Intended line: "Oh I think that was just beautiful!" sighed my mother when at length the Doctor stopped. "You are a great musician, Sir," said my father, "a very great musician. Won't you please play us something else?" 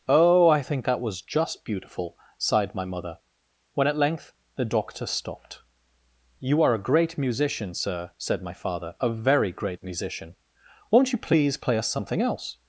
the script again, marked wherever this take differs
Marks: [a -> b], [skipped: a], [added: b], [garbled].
"Oh I think that was just beautiful!" sighed my mother when at length the Doctor stopped. "You are a great musician, Sir," said my father, "a very great musician. Won't you please play us something else?"